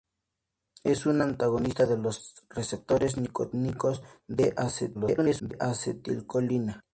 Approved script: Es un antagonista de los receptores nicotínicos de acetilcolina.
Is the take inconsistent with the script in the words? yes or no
yes